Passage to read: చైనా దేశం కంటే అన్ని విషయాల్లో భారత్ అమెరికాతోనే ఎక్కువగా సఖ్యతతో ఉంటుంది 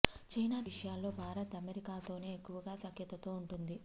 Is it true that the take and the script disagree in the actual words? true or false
true